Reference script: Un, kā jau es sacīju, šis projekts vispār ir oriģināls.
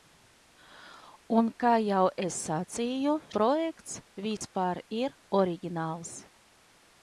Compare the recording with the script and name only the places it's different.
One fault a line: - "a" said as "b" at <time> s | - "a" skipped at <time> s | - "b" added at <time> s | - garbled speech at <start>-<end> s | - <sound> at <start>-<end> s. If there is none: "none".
- "šis" skipped at 3.1 s
- dropout at 4.4-4.4 s